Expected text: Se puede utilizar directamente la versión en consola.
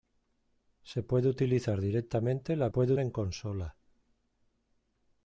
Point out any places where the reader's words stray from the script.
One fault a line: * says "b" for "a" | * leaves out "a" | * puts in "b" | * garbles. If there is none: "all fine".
* says "puede" for "versión"